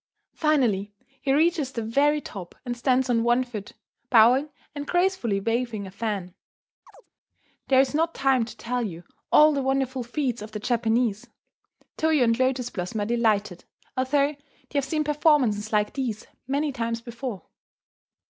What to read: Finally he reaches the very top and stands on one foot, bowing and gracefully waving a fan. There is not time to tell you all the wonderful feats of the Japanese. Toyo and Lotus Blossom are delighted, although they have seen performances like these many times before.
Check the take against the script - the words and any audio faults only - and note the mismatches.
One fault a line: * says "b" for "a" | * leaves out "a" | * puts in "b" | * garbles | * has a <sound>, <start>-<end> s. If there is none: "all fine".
* has a chirp, 6.9-7.1 s